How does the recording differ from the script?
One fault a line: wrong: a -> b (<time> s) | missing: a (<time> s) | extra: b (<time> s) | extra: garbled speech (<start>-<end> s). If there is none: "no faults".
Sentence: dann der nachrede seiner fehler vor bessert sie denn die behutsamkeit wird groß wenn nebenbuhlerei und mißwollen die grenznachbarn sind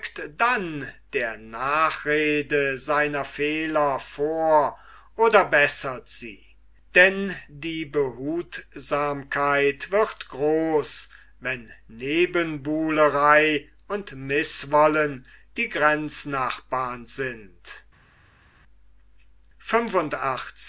extra: oder (5.2 s)